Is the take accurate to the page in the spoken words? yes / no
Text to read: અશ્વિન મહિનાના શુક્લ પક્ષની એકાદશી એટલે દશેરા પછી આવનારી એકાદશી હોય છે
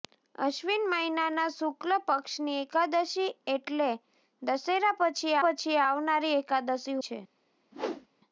no